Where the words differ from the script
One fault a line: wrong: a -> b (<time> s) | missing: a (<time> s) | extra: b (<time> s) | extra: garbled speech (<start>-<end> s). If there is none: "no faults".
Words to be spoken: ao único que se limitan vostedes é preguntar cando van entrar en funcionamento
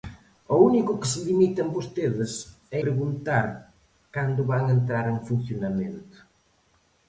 no faults